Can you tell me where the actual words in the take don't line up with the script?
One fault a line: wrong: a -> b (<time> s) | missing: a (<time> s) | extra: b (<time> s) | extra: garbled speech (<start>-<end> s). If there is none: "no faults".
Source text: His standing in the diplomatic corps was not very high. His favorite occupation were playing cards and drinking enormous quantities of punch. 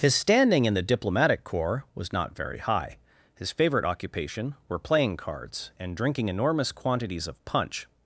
no faults